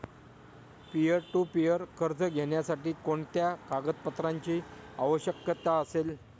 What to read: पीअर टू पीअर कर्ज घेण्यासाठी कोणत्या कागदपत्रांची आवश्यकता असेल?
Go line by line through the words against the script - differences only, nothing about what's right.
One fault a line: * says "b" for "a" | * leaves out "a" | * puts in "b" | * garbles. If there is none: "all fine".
all fine